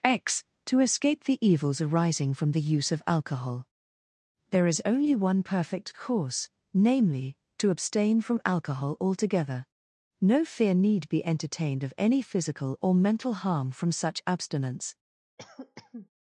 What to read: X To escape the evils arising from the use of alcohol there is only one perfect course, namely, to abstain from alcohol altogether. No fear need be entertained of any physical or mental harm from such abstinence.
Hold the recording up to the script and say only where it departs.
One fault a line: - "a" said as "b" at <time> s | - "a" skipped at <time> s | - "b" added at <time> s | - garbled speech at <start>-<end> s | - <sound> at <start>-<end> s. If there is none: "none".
- cough at 15.4-16.1 s